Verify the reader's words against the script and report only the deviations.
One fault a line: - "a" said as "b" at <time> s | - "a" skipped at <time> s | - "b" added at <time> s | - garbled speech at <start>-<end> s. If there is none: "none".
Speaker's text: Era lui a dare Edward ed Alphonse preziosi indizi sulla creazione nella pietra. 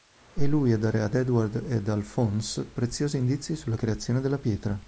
- "Era" said as "È" at 0.3 s
- "ad" added at 1.0 s
- "nella" said as "della" at 4.2 s